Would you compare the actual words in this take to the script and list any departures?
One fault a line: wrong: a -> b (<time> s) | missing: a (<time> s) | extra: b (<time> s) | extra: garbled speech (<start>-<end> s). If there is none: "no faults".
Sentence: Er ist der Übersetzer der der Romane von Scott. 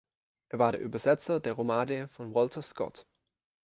wrong: ist -> war (0.6 s)
missing: der (1.5 s)
extra: Walter (2.4 s)